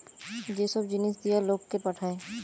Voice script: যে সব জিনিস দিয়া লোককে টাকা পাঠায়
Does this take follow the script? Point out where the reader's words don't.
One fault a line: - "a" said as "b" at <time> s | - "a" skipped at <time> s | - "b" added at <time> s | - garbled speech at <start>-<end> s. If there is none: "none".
- "টাকা" skipped at 1.8 s